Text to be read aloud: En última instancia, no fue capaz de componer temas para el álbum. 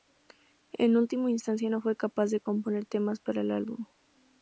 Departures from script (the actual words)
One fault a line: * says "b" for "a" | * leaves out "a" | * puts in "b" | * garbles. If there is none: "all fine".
all fine